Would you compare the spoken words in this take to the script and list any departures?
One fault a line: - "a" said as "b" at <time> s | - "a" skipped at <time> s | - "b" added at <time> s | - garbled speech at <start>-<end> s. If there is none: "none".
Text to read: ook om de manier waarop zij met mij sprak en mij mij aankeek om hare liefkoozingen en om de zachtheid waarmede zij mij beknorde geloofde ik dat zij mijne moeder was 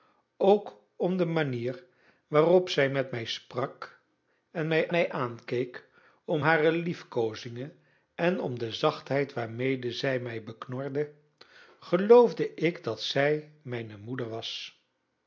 none